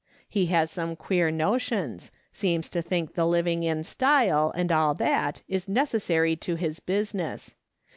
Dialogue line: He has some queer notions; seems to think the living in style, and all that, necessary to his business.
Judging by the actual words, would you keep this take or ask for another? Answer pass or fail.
fail